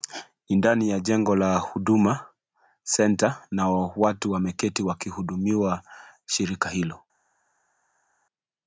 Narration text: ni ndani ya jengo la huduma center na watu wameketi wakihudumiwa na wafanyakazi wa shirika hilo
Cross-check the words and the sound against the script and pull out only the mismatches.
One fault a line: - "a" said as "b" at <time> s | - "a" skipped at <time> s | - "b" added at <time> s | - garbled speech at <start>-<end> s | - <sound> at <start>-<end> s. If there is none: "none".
- "na wafanyakazi wa" skipped at 5.8 s